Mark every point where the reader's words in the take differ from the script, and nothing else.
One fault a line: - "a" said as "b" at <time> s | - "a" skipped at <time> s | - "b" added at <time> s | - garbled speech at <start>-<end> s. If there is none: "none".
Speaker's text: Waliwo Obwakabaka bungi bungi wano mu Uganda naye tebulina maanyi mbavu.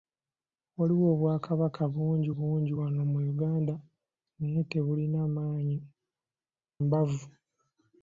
none